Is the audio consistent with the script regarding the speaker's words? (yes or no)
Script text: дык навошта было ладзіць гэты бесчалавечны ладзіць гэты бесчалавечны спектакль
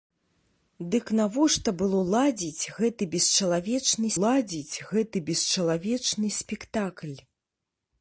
yes